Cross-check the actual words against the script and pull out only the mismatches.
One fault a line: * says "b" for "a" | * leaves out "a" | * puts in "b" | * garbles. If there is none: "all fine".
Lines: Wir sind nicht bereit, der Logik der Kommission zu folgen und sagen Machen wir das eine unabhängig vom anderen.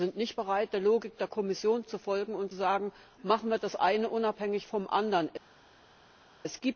all fine